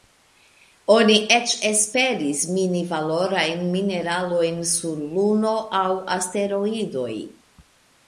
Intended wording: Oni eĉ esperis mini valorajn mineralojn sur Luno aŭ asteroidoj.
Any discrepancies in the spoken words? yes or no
no